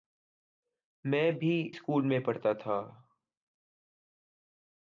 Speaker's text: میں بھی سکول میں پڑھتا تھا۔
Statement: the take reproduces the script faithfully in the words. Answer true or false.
true